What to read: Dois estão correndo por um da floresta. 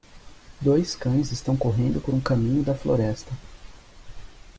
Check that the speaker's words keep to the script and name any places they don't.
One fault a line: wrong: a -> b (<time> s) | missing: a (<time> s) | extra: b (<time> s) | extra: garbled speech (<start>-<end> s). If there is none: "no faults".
extra: cães (0.9 s)
extra: caminho (2.2 s)